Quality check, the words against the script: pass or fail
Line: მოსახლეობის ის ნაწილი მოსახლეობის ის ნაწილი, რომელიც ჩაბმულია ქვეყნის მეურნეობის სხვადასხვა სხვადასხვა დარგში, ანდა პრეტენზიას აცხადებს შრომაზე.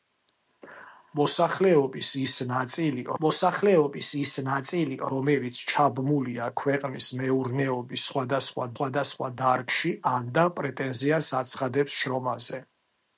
pass